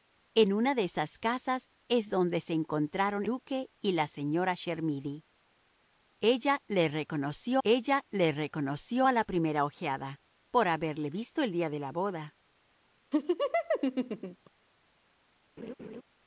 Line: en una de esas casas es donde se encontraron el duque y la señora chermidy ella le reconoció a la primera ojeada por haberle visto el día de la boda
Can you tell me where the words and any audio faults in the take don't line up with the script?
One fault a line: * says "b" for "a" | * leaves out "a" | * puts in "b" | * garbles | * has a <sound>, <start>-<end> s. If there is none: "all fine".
* leaves out "el"
* puts in "ella le reconoció"
* has a laugh, 13.1-14.5 s
* has a laugh, 15.6-16.0 s